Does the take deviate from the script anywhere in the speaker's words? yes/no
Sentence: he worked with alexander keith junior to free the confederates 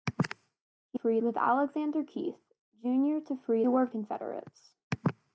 yes